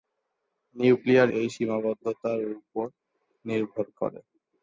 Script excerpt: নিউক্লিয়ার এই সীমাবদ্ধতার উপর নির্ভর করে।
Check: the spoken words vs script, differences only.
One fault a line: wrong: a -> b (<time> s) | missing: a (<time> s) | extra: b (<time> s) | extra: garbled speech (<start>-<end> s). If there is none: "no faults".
no faults